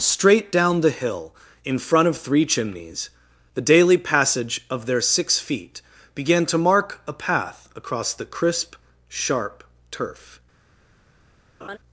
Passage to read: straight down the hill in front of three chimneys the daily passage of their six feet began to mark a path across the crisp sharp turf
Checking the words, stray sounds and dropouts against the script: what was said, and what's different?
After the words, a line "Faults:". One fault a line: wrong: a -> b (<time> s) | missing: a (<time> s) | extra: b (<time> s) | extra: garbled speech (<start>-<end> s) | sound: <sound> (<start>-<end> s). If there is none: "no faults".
straight down the hill in front of three chimneys the daily passage of their six feet began to mark a path across the crisp sharp turf
Faults:
sound: laugh (11.6-11.8 s)